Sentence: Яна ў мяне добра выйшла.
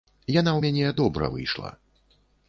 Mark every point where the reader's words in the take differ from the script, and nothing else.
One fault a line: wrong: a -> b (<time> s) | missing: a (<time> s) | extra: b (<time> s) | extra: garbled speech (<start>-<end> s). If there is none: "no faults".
no faults